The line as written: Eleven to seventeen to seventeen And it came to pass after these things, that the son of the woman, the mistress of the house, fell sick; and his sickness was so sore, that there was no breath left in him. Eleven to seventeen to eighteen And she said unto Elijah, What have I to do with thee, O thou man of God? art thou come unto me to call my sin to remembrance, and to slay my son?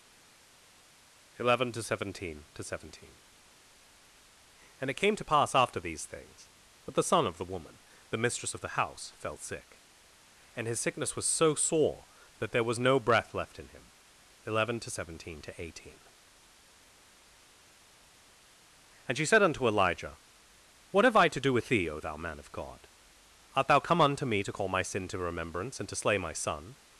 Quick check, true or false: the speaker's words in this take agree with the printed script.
true